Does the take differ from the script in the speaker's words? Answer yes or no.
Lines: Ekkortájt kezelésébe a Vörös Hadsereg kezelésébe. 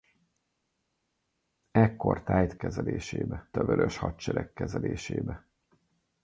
no